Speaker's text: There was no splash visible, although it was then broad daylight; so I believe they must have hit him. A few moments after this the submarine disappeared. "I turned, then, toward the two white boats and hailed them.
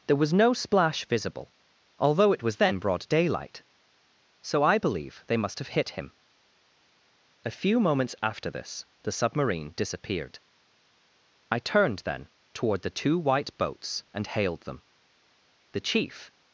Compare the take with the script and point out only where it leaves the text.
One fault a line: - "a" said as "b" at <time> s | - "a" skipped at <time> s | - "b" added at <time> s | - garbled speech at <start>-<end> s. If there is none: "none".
- "The chief" added at 15.7 s